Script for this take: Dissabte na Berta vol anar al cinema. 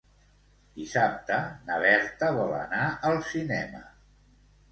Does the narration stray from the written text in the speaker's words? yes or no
no